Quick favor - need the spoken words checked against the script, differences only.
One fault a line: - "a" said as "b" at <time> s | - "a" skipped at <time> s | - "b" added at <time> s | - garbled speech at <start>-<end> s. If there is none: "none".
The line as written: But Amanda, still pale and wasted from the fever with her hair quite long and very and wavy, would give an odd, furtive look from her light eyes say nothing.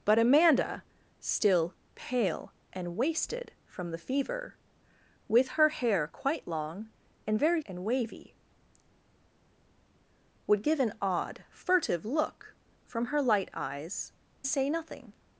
none